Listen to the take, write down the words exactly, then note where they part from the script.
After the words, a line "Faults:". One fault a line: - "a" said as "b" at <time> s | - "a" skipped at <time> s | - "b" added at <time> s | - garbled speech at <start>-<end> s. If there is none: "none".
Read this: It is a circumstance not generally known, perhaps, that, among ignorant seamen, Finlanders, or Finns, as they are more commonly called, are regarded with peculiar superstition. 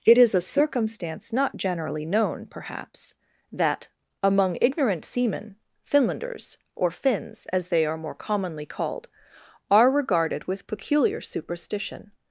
It is a circumstance not generally known, perhaps, that, among ignorant seamen, Finlanders, or Finns, as they are more commonly called, are regarded with peculiar superstition.
Faults:
none